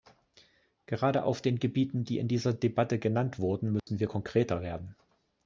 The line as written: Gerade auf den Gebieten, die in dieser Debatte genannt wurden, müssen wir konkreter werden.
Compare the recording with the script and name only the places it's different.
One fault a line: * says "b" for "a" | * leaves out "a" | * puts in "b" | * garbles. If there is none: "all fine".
all fine